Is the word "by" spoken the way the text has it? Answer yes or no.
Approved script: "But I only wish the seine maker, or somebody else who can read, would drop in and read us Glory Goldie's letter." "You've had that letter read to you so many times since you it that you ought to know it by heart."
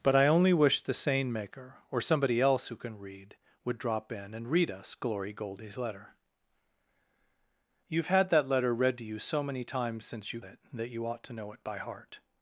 yes